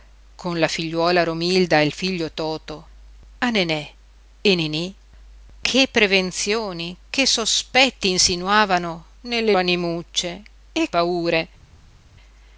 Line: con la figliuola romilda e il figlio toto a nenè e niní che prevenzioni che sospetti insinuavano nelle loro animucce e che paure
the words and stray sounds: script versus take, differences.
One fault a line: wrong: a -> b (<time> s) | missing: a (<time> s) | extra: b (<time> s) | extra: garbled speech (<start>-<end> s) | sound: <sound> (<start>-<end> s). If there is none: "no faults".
missing: loro (9.5 s)
missing: che (10.9 s)